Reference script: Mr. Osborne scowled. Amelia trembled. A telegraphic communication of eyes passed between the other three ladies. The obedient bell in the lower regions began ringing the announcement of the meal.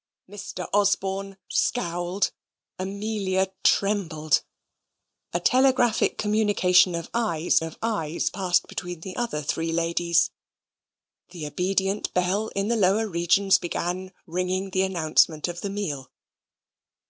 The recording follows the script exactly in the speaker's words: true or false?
false